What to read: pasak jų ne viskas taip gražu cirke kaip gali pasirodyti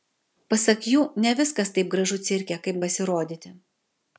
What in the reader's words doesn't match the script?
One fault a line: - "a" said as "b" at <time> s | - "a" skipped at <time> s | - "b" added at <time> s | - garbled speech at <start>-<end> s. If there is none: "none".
- "gali" skipped at 2.8 s